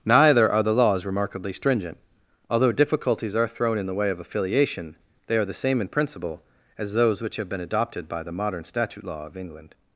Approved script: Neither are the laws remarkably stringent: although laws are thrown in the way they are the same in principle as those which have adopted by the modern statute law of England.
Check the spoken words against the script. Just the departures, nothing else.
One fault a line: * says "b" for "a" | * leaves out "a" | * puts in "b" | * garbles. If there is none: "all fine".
* says "difficulties" for "laws"
* puts in "of affiliation"
* puts in "been"